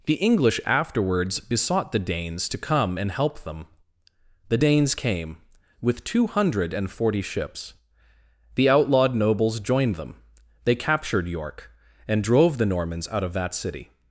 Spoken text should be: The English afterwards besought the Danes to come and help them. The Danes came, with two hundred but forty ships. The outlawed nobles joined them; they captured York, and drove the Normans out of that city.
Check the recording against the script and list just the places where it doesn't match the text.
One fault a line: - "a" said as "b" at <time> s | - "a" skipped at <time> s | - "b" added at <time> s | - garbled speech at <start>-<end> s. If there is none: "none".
- "but" said as "and" at 6.7 s